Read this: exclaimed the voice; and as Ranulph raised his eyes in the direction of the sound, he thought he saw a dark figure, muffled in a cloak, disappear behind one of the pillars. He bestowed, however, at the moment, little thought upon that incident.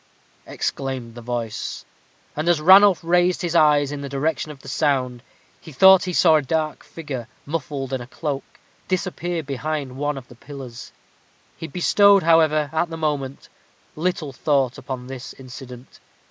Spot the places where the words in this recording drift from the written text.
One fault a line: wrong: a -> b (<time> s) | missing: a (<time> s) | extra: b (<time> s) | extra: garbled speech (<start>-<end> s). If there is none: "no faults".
wrong: that -> this (15.1 s)